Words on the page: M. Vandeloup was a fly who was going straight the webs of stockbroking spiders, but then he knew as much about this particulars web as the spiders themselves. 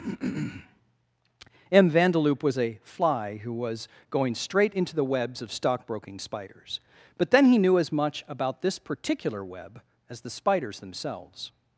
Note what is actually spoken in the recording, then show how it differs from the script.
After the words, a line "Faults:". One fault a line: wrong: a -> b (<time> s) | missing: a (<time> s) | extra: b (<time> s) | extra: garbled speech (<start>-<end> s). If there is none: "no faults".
M. Vandeloup was a fly who was going straight into the webs of stockbroking spiders, but then he knew as much about this particular web as the spiders themselves.
Faults:
extra: into (4.7 s)
wrong: particulars -> particular (8.8 s)